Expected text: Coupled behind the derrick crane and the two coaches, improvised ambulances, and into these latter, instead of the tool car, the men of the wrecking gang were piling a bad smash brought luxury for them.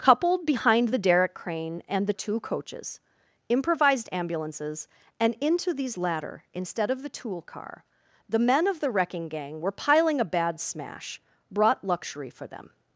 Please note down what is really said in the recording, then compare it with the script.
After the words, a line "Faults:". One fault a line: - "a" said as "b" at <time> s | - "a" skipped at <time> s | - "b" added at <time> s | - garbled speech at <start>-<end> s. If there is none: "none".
Coupled behind the derrick crane and the two coaches, improvised ambulances, and into these latter, instead of the tool car, the men of the wrecking gang were piling a bad smash brought luxury for them.
Faults:
none